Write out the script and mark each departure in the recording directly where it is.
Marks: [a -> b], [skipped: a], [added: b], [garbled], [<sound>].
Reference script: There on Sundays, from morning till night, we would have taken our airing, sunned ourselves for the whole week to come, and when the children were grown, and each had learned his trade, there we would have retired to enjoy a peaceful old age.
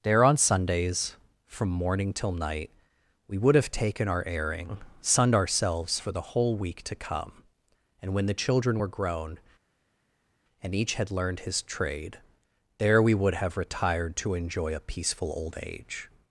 There on Sundays, from morning till night, we would have taken our airing, sunned ourselves for the whole week to come, and when the children were grown, and each had learned his trade, there we would have retired to enjoy a peaceful old age.